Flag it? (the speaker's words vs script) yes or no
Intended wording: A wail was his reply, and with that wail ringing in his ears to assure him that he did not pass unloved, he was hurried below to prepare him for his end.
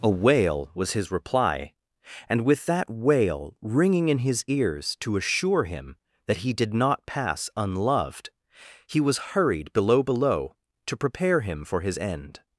yes